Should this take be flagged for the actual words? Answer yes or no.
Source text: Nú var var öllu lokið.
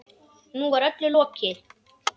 yes